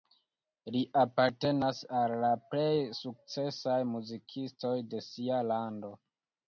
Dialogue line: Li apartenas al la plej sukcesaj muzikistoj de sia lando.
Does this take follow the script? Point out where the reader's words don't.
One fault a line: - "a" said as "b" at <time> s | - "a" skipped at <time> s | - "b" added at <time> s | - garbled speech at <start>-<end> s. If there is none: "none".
none